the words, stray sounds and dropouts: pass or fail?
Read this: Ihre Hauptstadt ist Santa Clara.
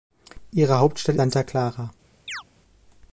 fail